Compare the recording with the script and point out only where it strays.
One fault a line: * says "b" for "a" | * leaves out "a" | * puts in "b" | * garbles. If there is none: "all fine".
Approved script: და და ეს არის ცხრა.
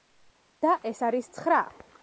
* leaves out "და"